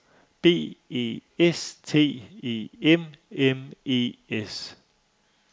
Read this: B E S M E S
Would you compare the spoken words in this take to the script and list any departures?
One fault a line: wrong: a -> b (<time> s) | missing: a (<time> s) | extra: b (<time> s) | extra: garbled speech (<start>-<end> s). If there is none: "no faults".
extra: T E M (1.8 s)